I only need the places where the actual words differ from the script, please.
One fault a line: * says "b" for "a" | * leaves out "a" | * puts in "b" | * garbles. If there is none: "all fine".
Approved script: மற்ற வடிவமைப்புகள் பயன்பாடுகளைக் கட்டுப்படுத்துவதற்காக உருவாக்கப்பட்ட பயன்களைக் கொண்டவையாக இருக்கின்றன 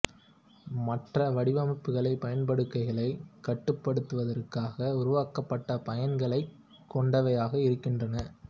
all fine